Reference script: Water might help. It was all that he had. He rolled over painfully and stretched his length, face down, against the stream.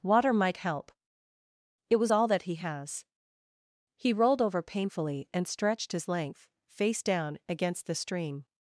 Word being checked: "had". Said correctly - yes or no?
no